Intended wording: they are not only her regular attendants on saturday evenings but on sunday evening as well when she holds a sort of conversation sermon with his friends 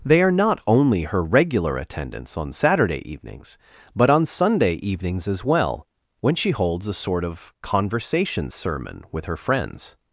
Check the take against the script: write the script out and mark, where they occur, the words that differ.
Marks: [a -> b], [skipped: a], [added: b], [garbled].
they are not only her regular attendants on saturday evenings but on sunday [evening -> evenings] as well when she holds a sort of conversation sermon with [his -> her] friends